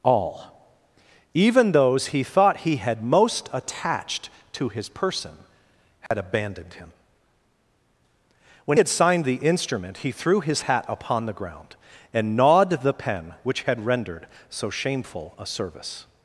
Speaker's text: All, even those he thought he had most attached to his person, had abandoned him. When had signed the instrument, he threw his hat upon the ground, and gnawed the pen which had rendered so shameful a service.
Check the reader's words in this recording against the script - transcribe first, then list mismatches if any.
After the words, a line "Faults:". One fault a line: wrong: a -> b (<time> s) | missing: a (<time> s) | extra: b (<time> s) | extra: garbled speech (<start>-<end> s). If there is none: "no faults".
All, even those he thought he had most attached to his person, had abandoned him. When had signed the instrument, he threw his hat upon the ground, and gnawed the pen which had rendered so shameful a service.
Faults:
no faults